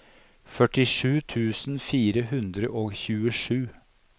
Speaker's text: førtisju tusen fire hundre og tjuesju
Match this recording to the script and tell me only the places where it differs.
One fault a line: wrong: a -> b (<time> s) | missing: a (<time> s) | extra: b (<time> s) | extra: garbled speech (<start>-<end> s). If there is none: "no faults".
no faults